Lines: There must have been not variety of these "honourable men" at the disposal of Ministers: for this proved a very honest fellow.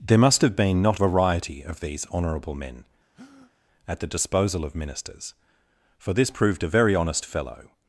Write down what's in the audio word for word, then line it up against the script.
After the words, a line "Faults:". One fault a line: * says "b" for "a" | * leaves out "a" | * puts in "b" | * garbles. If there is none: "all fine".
There must have been not variety of these "honourable men" at the disposal of Ministers: for this proved a very honest fellow.
Faults:
all fine